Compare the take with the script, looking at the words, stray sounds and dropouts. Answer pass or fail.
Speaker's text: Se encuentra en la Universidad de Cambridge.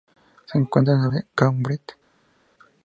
fail